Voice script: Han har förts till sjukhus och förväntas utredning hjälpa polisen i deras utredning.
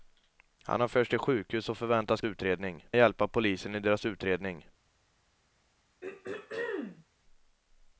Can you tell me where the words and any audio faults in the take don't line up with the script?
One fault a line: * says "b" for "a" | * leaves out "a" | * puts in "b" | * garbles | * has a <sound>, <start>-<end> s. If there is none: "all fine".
* has a throat clearing, 6.0-7.0 s